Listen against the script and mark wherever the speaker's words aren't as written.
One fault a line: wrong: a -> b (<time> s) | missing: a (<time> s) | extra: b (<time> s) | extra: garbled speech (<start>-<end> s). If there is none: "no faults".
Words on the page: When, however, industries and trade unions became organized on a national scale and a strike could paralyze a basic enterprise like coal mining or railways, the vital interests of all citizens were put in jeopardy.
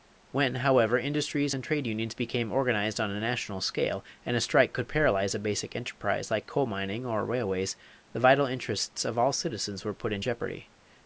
no faults